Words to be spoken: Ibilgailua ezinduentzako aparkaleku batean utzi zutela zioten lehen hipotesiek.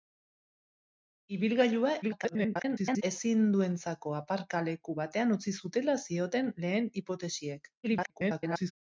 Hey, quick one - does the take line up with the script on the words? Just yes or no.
no